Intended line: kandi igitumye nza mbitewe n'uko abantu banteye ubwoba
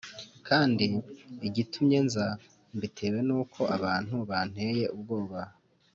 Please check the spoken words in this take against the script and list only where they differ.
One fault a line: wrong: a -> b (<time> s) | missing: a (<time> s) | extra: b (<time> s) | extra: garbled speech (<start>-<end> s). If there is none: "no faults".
no faults